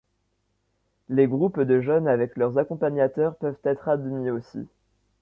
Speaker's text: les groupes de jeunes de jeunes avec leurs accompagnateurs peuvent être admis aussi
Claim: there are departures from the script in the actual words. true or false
true